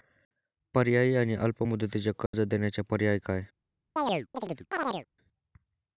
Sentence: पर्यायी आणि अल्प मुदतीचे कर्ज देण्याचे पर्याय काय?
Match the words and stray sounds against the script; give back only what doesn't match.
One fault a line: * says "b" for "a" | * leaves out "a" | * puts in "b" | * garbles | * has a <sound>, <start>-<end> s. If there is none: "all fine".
* has a dropout, 2.3-2.3 s
* has a chirp, 4.0-5.1 s